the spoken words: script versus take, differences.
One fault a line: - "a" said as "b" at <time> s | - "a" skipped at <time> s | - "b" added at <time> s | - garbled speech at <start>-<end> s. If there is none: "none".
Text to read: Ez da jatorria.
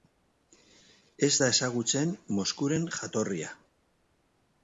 - "ezagutzen Moskuren" added at 1.5 s